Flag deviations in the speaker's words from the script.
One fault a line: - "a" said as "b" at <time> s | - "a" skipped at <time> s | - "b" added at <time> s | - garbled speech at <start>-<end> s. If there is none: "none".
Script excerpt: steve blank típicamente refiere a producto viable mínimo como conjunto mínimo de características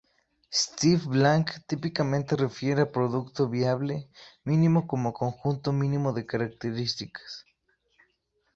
none